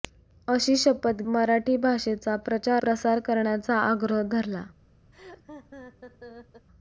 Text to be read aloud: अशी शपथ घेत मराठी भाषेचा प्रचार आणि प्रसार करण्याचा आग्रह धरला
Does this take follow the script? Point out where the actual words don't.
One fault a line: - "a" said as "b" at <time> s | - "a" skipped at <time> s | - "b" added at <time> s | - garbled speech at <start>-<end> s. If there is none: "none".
- "घेत" skipped at 1.2 s
- "आणि" skipped at 2.8 s